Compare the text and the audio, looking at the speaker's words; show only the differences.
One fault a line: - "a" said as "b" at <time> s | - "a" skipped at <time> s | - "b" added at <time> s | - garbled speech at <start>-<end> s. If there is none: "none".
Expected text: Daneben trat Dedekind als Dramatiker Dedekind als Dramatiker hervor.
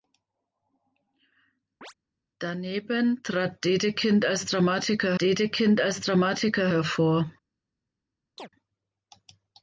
none